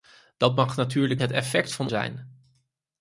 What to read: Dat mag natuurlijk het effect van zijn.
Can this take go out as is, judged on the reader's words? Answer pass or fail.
pass